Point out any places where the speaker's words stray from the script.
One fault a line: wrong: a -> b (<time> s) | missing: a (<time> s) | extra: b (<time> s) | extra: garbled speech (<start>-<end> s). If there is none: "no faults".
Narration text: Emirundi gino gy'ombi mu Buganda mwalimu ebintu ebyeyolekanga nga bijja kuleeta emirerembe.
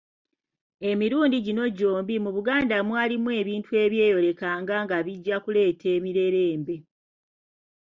no faults